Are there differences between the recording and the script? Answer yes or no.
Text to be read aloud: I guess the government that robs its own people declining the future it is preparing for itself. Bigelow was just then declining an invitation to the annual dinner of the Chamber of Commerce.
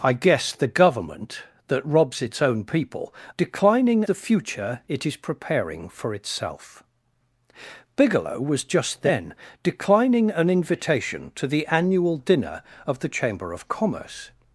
no